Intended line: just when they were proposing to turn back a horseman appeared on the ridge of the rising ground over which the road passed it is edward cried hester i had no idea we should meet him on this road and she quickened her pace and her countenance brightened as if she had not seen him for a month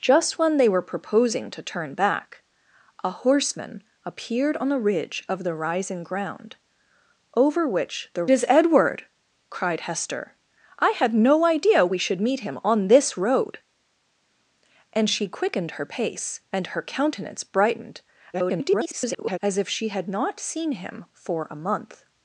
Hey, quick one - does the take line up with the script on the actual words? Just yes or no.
no